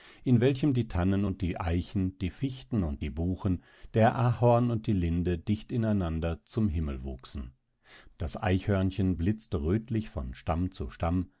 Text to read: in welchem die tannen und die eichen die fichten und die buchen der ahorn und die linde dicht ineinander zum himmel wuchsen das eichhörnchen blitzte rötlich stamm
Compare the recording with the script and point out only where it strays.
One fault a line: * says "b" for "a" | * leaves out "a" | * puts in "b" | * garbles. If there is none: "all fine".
* puts in "von stamm zu"